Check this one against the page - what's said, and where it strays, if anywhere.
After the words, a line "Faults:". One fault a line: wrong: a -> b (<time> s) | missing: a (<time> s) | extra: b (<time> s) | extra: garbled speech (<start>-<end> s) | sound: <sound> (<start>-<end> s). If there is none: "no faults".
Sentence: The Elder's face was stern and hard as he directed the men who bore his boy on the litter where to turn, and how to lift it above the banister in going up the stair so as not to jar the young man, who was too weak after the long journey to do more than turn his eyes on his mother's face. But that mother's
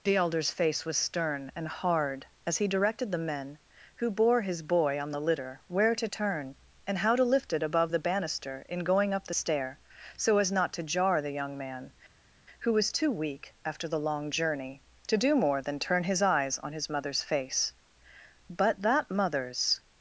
The Elder's face was stern and hard as he directed the men who bore his boy on the litter where to turn, and how to lift it above the banister in going up the stair so as not to jar the young man, who was too weak after the long journey to do more than turn his eyes on his mother's face. But that mother's
Faults:
no faults